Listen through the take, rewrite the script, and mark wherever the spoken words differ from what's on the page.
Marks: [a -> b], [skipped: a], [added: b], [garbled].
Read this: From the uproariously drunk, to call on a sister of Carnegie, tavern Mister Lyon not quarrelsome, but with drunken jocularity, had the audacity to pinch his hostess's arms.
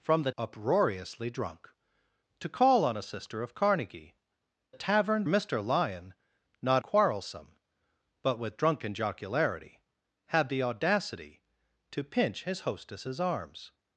From the uproariously drunk, to call on a sister of Carnegie, tavern Mister Lyon not quarrelsome, but with drunken jocularity, had the audacity to pinch his hostess's arms.